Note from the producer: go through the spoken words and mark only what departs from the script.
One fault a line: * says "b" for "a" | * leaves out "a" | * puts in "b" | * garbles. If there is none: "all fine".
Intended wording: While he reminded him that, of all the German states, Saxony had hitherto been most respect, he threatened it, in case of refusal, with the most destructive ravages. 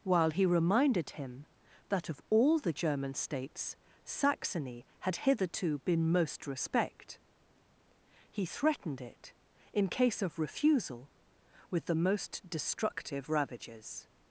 all fine